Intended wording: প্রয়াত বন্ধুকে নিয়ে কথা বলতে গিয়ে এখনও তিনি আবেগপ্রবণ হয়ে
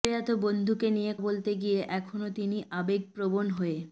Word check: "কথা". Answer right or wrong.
wrong